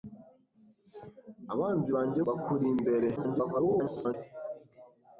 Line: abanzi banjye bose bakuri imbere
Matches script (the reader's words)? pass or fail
fail